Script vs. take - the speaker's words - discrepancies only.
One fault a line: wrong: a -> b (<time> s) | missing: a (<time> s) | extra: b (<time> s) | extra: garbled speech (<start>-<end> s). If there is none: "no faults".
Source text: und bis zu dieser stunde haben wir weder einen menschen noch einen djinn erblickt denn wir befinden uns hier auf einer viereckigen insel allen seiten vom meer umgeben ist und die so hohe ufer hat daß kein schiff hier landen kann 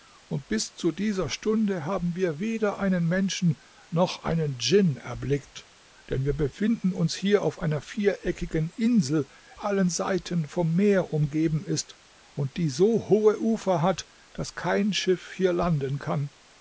no faults